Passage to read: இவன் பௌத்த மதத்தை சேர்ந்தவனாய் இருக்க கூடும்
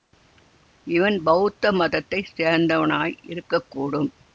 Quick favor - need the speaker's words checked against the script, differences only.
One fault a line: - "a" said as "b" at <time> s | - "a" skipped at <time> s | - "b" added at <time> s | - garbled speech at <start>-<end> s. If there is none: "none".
none